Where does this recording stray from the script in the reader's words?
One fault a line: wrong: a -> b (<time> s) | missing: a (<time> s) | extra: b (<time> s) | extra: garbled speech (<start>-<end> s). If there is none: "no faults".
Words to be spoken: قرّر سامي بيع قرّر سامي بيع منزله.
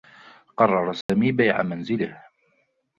missing: قرّر سامي بيع (1.6 s)